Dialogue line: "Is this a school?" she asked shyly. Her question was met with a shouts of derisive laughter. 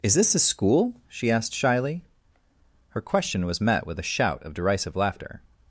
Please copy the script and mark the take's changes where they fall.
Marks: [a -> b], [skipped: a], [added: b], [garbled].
"Is this a school?" she asked shyly. Her question was met with a [shouts -> shout] of derisive laughter.